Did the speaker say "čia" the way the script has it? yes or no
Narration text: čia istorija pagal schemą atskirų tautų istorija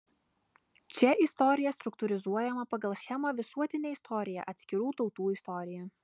yes